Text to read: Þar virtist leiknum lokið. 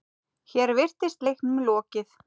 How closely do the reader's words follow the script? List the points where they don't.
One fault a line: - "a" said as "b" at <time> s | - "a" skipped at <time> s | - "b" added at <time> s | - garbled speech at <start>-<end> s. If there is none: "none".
- "Þar" said as "Hér" at 0.5 s